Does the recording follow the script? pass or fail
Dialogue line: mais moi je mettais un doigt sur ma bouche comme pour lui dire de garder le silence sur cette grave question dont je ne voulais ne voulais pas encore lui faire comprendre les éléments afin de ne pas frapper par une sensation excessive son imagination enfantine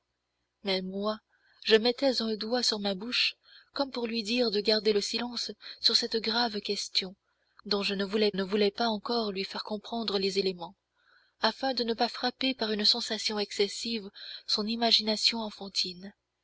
pass